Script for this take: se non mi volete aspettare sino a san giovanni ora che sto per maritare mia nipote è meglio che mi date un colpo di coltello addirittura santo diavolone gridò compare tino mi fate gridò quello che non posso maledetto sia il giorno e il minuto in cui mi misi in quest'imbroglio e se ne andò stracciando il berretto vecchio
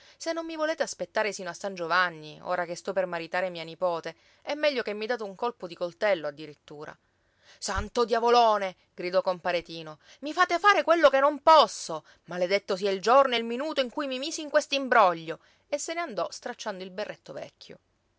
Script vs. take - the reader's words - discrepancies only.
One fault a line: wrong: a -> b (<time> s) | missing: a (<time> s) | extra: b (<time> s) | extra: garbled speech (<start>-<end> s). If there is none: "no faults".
wrong: gridò -> fare (10.6 s)